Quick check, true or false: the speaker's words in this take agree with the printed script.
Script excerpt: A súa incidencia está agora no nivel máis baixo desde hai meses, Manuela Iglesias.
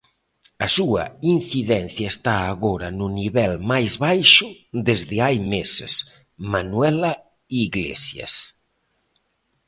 true